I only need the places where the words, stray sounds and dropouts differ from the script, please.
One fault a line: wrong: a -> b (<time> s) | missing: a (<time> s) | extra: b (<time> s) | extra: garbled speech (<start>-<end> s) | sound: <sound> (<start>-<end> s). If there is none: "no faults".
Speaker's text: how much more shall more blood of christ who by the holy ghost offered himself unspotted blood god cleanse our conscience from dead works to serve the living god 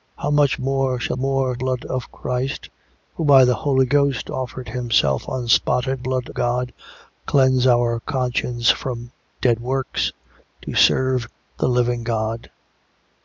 no faults